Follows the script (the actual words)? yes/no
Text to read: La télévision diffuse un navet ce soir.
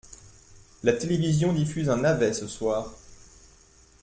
yes